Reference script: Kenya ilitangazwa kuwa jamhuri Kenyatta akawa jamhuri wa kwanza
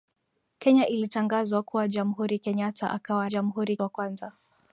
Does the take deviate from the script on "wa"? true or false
false